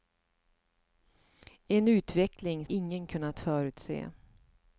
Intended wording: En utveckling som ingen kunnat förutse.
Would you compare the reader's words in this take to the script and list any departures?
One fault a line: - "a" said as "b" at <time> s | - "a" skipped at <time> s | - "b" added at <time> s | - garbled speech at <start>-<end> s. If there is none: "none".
- "som" skipped at 2.6 s